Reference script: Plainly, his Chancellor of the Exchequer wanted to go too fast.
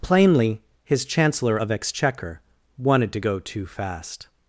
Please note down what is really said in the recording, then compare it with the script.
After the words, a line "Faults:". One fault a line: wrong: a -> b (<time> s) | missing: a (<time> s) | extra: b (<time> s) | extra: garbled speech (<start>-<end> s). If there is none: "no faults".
Plainly, his Chancellor of Exchequer wanted to go too fast.
Faults:
missing: the (1.7 s)